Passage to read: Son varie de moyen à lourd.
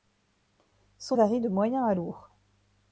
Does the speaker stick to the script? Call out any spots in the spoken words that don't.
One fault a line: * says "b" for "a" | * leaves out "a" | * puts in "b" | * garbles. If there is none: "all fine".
all fine